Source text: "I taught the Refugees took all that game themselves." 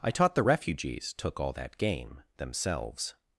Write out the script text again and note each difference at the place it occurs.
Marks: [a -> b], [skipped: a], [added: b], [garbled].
"I taught the Refugees took all that game themselves."